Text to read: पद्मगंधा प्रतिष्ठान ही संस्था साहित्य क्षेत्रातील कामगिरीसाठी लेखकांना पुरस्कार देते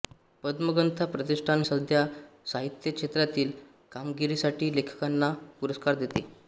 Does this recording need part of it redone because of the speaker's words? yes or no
yes